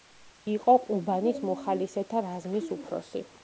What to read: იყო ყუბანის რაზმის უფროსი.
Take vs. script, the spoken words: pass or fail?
fail